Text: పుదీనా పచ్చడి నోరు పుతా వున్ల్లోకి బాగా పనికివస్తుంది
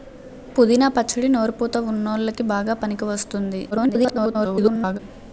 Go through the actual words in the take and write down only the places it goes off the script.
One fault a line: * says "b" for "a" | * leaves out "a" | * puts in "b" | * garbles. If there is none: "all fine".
* garbles